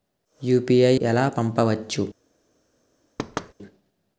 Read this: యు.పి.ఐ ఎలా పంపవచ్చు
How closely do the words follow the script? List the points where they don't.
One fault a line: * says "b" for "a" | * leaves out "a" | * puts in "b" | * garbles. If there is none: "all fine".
all fine